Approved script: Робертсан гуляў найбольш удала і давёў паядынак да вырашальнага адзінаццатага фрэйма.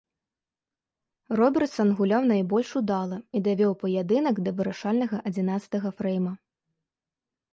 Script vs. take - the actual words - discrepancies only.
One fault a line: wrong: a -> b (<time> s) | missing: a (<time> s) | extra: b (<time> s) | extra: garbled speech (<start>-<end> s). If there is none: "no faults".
no faults